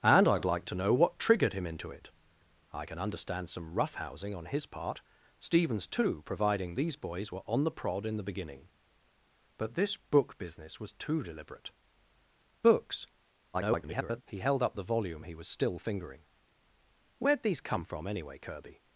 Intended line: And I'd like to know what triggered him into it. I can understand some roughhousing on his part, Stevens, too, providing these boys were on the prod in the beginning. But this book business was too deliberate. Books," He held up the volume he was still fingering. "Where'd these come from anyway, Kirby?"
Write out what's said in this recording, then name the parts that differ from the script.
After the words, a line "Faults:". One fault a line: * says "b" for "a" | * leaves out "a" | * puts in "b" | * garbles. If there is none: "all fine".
And I'd like to know what triggered him into it. I can understand some roughhousing on his part, Stevens, too, providing these boys were on the prod in the beginning. But this book business was too deliberate. Books," [garbled] He held up the volume he was still fingering. "Where'd these come from anyway, Kirby?"
Faults:
* garbles